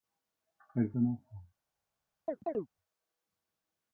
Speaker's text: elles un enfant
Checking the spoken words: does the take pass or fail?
pass